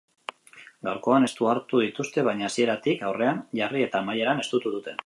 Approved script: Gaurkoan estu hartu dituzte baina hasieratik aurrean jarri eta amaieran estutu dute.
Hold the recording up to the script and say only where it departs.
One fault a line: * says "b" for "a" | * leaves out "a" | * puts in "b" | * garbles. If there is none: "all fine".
all fine